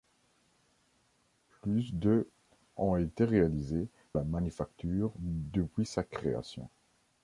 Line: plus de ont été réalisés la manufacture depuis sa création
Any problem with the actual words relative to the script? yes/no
no